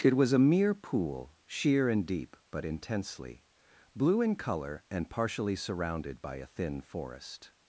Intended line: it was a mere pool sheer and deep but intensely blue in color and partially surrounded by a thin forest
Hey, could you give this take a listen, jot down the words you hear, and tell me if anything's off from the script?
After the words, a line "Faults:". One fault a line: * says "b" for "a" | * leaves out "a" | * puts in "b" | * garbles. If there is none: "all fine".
it was a mere pool sheer and deep but intensely blue in color and partially surrounded by a thin forest
Faults:
all fine